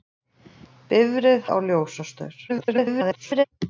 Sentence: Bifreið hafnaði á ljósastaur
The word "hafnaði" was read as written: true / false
false